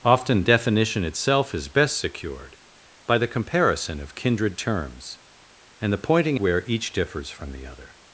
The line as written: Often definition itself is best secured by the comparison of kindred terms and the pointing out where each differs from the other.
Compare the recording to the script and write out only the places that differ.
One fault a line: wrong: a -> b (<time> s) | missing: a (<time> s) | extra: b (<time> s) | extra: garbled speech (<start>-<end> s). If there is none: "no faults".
missing: out (6.4 s)